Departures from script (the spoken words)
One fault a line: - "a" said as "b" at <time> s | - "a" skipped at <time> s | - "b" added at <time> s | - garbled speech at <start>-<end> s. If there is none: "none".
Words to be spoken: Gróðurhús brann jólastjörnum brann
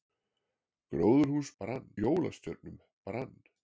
none